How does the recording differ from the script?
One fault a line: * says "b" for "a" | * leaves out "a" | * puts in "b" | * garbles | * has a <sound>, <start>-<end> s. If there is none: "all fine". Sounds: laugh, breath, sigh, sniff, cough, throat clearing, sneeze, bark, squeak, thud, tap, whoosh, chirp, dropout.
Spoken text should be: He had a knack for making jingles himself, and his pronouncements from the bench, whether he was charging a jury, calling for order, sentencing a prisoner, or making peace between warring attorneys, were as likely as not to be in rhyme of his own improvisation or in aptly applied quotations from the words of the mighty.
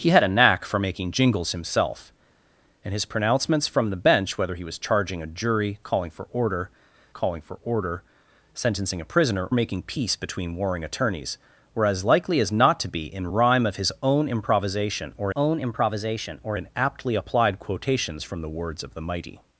* puts in "calling for order"
* leaves out "or"
* puts in "own improvisation or"